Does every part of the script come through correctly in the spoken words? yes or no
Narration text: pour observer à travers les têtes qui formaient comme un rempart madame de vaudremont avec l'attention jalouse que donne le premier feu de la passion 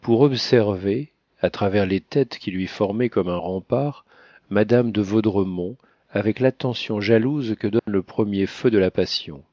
no